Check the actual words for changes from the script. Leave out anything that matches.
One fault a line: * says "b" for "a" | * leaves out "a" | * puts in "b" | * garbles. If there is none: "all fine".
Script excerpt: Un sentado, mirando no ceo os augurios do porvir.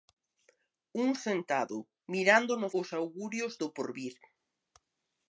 * leaves out "ceo"